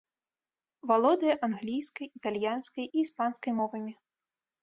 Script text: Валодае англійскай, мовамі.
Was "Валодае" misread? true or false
false